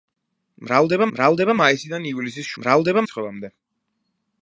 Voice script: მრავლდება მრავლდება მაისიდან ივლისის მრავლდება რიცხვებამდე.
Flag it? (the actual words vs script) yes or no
no